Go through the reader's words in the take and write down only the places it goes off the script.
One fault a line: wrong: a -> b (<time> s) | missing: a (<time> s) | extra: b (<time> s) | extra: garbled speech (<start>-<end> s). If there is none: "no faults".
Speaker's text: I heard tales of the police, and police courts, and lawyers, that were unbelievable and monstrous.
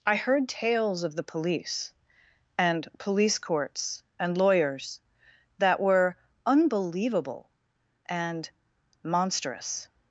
no faults